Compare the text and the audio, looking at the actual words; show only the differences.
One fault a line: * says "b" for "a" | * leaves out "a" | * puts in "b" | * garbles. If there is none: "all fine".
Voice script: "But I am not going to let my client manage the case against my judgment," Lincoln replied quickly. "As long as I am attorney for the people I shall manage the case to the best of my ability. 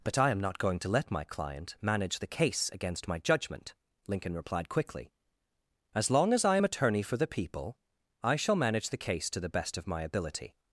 all fine